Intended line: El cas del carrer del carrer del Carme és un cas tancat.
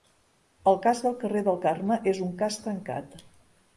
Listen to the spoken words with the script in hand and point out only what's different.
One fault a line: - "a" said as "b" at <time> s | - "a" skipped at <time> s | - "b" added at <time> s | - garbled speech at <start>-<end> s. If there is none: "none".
- "carrer del" skipped at 1.6 s